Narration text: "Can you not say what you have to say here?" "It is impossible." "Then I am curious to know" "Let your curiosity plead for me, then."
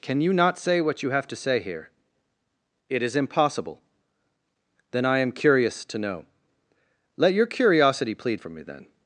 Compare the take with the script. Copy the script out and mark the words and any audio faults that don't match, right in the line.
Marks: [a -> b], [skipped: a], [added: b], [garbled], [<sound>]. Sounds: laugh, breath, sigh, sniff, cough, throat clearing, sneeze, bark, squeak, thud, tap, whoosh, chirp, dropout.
"Can you not say what you have to say here?" "It is impossible." "Then I am curious to know" "Let your curiosity plead for me, then."